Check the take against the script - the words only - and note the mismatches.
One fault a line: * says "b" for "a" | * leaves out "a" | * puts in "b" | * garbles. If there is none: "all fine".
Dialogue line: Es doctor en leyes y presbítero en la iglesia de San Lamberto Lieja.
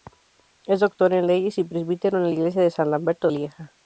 all fine